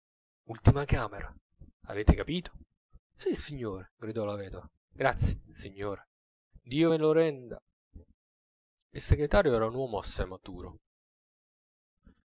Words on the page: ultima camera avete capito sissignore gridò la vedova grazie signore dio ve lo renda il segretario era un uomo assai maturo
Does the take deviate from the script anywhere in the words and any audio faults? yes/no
no